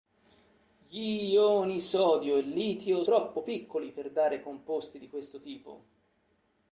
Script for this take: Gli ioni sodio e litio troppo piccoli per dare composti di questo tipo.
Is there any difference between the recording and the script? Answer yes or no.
no